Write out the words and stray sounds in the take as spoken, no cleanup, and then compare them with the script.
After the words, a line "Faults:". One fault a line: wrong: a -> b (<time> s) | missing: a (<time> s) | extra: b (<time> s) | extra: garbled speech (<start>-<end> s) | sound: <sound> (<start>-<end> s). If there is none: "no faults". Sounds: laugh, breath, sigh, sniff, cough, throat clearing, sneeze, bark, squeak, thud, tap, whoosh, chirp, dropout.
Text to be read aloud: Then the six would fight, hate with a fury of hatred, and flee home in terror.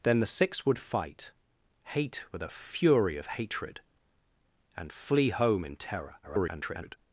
Then the six would fight, hate with a fury of hatred, and flee home in terror. [garbled]
Faults:
extra: garbled speech (6.2-7.0 s)